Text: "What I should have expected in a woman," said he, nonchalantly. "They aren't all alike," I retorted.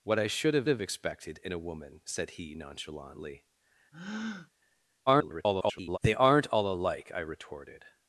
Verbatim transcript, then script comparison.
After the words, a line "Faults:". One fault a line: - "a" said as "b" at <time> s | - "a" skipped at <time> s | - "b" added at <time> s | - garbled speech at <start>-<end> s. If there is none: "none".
"What I should have have expected in a woman," said he, nonchalantly. [garbled] "They aren't all alike," I retorted.
Faults:
- "have" added at 0.7 s
- garbled speech at 5.1-6.0 s